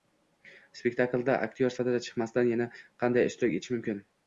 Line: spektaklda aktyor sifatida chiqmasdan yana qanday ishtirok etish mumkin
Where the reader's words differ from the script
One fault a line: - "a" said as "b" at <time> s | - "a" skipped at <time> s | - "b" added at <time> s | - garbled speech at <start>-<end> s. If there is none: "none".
none